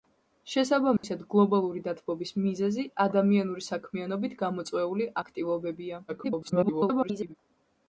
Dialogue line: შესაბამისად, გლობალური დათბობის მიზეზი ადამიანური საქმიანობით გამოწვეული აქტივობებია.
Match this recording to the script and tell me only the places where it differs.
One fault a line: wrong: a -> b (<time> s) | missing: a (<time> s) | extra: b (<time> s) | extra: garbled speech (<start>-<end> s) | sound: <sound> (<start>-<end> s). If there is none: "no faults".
sound: dropout (1.0-1.0 s)
extra: garbled speech (6.1-7.3 s)